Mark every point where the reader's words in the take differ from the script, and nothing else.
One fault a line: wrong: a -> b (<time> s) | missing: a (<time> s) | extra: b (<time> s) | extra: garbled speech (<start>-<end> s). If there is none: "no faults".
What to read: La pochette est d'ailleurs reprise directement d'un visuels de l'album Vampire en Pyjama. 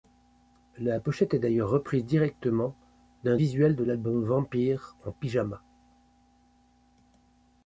no faults